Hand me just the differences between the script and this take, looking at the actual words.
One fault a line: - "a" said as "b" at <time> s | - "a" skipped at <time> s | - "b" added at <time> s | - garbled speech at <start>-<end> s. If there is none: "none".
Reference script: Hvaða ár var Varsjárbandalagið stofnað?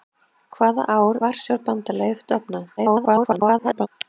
- "var" skipped at 1.2 s
- garbled speech at 2.8-3.9 s